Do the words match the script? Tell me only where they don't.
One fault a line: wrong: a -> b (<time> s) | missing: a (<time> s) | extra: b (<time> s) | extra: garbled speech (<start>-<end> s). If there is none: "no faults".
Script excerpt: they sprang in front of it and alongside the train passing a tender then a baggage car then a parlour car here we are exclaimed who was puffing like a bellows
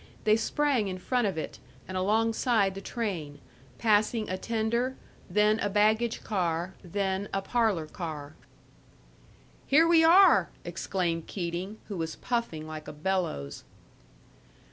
extra: keating (11.3 s)